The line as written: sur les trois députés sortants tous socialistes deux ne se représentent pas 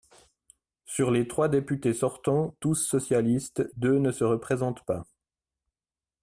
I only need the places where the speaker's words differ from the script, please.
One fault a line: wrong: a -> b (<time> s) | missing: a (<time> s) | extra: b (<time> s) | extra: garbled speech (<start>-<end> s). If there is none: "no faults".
no faults